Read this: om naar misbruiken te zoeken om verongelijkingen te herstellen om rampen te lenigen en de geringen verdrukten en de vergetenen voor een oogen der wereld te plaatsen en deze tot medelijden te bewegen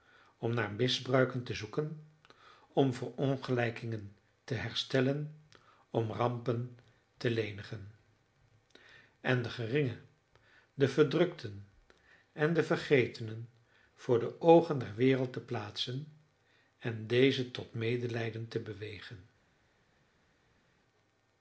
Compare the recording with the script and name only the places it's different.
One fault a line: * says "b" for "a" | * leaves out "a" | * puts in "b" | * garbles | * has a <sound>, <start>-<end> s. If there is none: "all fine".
* puts in "de"
* says "de" for "een"